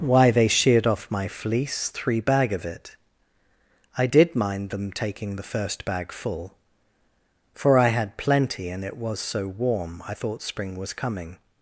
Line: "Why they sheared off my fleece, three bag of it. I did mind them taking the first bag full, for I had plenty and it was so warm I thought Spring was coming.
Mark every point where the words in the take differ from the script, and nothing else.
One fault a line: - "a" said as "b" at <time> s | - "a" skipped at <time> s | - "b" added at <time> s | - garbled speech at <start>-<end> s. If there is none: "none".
none